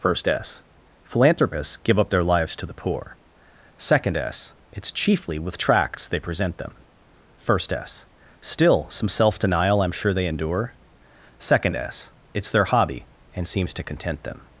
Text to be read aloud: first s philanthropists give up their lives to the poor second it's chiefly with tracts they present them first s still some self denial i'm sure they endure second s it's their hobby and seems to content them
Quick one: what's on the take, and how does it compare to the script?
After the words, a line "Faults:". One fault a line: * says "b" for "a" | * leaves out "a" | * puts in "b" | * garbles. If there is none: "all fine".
first s philanthropists give up their lives to the poor second s it's chiefly with tracts they present them first s still some self denial i'm sure they endure second s it's their hobby and seems to content them
Faults:
* puts in "s"